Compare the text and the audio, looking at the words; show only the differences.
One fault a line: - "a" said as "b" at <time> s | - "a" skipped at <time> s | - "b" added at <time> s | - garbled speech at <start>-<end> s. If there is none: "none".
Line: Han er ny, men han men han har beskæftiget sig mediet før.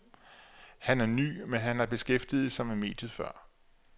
- "men han" skipped at 1.8 s
- "med" added at 2.6 s